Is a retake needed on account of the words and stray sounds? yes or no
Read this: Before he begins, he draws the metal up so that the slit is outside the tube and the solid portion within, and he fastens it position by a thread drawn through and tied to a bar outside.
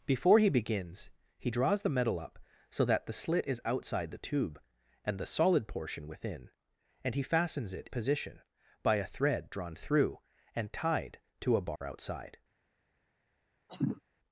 yes